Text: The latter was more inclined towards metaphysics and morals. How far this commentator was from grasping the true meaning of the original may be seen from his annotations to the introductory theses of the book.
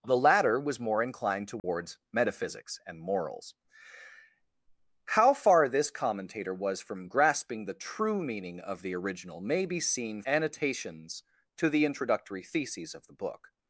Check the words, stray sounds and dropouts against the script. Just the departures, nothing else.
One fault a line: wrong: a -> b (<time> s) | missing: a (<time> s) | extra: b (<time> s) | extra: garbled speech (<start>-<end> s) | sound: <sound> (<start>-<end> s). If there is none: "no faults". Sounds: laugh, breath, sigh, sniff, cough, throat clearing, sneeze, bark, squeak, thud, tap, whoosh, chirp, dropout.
sound: dropout (1.6-1.6 s)
missing: from his (10.2 s)